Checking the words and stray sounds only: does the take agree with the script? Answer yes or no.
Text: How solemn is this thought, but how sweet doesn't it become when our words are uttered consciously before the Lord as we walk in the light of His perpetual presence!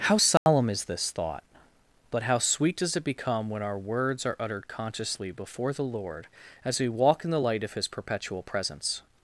no